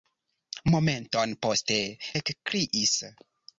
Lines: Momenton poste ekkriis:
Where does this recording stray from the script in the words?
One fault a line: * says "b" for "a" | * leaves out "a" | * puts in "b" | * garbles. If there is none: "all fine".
all fine